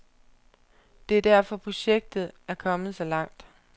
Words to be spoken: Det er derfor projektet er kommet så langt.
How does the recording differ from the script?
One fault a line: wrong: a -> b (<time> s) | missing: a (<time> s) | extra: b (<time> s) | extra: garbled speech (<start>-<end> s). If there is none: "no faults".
no faults